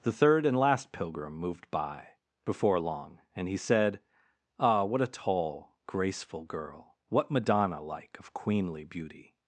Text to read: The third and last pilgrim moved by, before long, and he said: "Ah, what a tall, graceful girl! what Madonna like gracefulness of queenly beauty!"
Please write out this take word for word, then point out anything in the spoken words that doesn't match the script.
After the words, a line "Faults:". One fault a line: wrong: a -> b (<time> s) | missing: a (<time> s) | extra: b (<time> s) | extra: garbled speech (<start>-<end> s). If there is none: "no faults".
The third and last pilgrim moved by, before long, and he said: "Ah, what a tall, graceful girl! what Madonna like of queenly beauty!"
Faults:
missing: gracefulness (8.1 s)